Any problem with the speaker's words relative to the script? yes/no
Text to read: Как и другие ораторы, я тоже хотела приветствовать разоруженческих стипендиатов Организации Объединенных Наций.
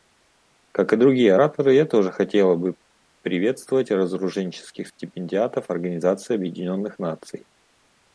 yes